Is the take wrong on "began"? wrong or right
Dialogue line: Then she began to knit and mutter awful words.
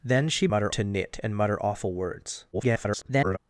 wrong